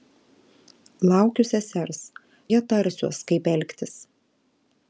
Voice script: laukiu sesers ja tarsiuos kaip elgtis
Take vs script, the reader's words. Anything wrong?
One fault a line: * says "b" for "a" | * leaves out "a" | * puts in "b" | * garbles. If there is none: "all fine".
all fine